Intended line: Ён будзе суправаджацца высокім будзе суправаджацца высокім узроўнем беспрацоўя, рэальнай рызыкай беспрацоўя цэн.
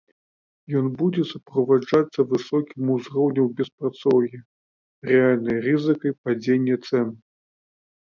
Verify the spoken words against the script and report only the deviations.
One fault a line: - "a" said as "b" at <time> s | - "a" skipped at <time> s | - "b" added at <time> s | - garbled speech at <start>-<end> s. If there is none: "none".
- "будзе суправаджацца высокім" skipped at 2.9 s
- "беспрацоўя" said as "падзення" at 6.3 s